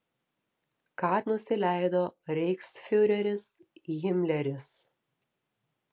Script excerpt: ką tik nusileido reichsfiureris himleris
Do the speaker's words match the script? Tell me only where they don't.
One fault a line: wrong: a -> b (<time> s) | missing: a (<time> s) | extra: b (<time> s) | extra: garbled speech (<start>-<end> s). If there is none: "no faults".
missing: tik (1.1 s)